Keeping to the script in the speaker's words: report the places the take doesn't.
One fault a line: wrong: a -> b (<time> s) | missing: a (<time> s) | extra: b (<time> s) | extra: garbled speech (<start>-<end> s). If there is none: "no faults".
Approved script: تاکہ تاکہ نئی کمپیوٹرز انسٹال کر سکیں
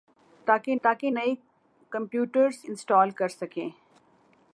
no faults